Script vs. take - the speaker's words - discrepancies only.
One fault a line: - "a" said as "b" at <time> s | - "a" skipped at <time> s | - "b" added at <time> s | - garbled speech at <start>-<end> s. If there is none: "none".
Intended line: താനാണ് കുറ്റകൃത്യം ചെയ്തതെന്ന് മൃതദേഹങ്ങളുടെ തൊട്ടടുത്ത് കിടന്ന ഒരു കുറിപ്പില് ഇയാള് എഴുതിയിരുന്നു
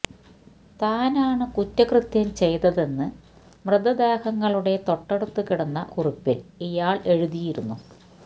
- "ഒരു" skipped at 5.9 s